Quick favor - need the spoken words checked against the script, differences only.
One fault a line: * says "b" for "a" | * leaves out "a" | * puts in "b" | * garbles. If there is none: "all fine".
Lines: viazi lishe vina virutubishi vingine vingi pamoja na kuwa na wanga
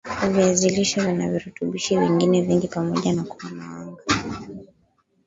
all fine